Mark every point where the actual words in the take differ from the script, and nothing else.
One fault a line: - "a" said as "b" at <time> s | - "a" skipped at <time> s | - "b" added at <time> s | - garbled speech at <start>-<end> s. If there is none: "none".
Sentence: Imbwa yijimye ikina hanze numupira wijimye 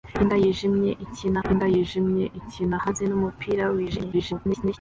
- "imbwa yijimye ikina" added at 1.5 s
- garbled speech at 4.1-4.8 s